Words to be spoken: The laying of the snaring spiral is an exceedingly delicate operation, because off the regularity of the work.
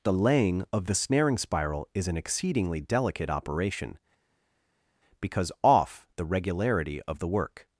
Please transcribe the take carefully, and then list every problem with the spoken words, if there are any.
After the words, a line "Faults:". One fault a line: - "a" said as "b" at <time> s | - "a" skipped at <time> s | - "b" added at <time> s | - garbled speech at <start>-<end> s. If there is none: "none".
The laying of the snaring spiral is an exceedingly delicate operation, because off the regularity of the work.
Faults:
none